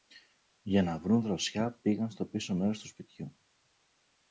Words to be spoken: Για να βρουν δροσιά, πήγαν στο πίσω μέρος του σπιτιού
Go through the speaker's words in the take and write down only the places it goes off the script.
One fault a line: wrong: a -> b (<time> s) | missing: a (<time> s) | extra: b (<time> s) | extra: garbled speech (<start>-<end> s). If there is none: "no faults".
no faults